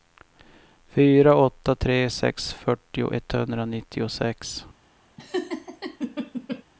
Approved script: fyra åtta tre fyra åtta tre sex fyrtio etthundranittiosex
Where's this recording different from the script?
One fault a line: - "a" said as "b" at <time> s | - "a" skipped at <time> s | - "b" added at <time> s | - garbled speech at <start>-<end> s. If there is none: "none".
- "fyra åtta tre" skipped at 2.1 s